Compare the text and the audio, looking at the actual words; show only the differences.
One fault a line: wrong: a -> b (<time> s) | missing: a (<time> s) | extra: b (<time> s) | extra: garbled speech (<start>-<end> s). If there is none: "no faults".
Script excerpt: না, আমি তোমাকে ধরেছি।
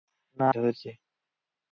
missing: আমি তোমাকে (0.5 s)